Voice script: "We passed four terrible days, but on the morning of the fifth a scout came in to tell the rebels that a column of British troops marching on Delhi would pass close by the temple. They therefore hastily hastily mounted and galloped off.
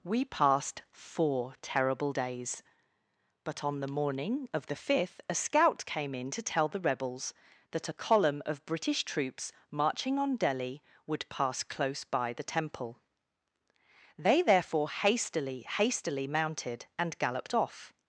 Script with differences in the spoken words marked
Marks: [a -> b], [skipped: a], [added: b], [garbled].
"We passed four terrible days, but on the morning of the fifth a scout came in to tell the rebels that a column of British troops marching on Delhi would pass close by the temple. They therefore hastily hastily mounted and galloped off.